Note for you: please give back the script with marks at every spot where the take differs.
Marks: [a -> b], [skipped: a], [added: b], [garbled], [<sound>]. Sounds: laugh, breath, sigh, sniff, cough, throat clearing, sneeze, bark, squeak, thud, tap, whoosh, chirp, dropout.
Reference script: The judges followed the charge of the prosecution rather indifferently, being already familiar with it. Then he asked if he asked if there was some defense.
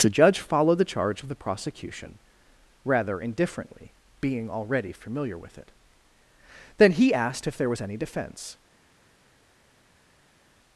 The [judges -> judge] followed the charge of the prosecution rather indifferently, being already familiar with it. Then he asked if [skipped: he asked if] there was [some -> any] defense.